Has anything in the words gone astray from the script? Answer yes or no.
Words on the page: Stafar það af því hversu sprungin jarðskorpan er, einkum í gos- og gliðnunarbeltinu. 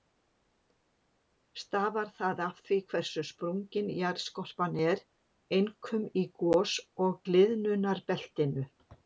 no